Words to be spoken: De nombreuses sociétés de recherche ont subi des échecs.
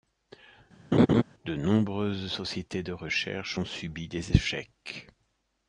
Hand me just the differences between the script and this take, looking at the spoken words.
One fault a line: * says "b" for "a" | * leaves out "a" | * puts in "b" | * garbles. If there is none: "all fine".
all fine